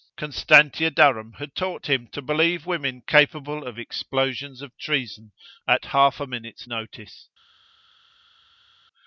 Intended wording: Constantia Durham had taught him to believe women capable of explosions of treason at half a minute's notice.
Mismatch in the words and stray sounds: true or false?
false